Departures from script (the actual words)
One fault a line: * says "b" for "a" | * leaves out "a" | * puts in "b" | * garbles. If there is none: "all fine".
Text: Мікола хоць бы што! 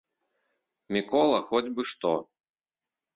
all fine